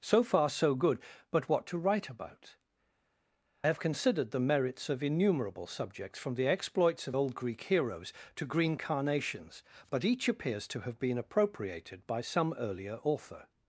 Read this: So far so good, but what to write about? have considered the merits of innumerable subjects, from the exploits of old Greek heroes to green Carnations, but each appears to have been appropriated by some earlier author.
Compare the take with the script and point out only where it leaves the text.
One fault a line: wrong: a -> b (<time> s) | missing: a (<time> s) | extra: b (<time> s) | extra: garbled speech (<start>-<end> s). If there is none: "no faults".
no faults